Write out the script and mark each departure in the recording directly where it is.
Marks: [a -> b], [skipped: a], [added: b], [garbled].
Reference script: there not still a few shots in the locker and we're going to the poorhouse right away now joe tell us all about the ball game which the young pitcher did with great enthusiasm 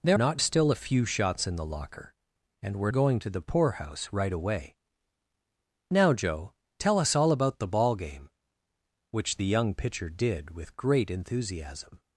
there not still a few shots in the locker and we're going to the poorhouse right away now joe tell us all about the ball game which the young pitcher did with great enthusiasm